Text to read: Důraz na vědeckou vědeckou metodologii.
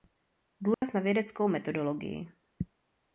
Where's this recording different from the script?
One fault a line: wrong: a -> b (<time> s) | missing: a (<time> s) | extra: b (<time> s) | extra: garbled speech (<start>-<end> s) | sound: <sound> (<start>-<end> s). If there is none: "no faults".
sound: dropout (0.7-0.8 s)
missing: vědeckou (1.5 s)